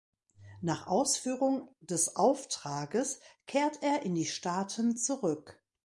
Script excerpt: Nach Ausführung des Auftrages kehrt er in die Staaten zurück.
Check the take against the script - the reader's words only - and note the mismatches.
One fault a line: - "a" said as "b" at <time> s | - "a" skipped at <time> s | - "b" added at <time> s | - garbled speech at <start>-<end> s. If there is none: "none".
none